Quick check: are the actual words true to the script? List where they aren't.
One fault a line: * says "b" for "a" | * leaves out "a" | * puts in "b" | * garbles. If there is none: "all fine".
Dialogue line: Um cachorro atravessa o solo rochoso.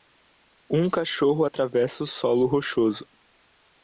all fine